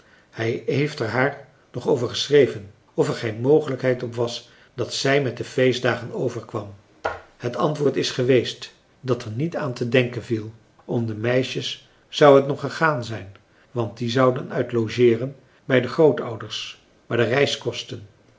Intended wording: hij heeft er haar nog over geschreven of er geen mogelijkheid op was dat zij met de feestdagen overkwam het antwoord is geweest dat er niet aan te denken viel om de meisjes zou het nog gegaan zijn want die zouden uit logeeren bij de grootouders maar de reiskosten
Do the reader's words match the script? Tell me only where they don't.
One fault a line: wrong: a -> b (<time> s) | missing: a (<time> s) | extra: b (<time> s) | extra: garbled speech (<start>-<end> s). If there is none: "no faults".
no faults